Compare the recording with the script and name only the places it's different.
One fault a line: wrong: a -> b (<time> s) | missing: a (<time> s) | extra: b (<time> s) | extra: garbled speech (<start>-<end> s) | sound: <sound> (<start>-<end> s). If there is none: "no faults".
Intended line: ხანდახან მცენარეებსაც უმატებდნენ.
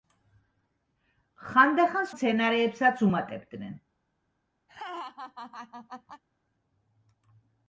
sound: laugh (4.7-6.2 s)